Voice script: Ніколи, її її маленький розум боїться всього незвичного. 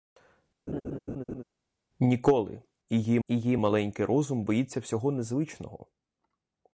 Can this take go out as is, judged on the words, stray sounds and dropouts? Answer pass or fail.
fail